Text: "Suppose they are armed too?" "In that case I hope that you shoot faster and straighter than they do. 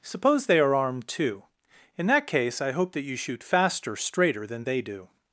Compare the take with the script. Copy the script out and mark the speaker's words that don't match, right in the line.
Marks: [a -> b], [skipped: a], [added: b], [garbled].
"Suppose they are armed too?" "In that case I hope that you shoot faster [skipped: and] straighter than they do.